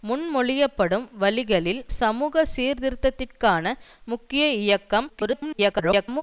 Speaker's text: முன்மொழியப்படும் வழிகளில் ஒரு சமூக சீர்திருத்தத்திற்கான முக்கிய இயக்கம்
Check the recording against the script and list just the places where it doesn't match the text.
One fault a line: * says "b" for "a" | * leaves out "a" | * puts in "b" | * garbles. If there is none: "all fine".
* leaves out "ஒரு"
* garbles